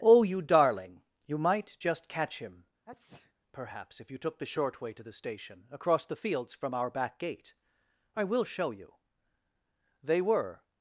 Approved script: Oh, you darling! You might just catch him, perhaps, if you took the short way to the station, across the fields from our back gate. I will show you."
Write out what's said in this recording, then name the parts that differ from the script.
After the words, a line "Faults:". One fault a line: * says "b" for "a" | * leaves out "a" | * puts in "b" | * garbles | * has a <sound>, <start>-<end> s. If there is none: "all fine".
Oh, you darling! You might just catch him, perhaps, if you took the short way to the station, across the fields from our back gate. I will show you." They were
Faults:
* has a sneeze, 2.9-3.3 s
* puts in "They were"